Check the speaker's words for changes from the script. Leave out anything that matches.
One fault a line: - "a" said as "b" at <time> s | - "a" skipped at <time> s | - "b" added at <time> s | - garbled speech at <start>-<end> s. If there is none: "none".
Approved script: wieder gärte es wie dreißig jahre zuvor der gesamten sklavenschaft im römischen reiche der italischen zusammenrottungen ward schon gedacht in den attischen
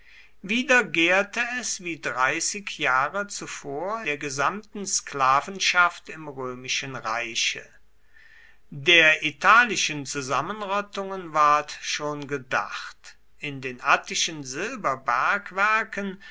none